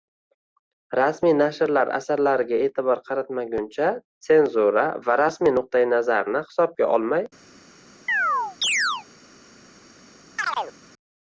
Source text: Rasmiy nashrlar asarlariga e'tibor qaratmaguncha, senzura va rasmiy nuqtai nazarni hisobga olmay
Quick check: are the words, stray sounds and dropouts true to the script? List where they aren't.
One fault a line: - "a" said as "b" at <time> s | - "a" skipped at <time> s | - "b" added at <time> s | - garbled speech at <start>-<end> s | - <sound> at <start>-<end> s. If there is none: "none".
- chirp at 8.1-9.1 s
- chirp at 10.4-10.7 s